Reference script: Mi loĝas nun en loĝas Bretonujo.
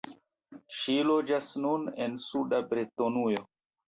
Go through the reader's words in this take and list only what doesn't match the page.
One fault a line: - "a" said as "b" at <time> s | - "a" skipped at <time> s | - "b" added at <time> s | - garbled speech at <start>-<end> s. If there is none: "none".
- "Mi" said as "Ŝi" at 0.8 s
- "loĝas" said as "suda" at 2.2 s